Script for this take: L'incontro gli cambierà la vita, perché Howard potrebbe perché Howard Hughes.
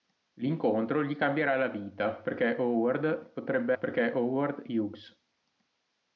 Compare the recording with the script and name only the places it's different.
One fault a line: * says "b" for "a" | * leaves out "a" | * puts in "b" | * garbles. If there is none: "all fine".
all fine